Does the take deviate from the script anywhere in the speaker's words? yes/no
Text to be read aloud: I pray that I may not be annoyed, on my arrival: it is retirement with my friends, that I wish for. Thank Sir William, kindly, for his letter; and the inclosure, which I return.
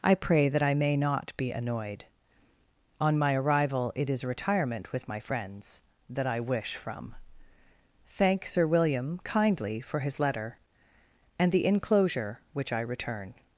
yes